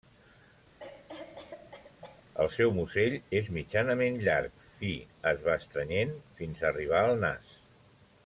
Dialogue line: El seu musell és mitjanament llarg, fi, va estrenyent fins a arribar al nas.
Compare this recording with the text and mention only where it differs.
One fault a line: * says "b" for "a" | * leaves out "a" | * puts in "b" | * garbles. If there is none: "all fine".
* puts in "es"